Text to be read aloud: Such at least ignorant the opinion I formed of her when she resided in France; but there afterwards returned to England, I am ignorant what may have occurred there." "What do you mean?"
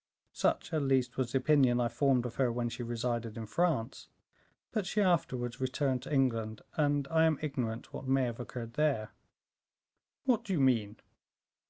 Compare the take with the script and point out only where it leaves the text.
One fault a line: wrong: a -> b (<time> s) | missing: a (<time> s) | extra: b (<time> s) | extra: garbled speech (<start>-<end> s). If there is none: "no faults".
wrong: ignorant -> was (1.2 s)
wrong: there -> she (4.8 s)
extra: and (6.7 s)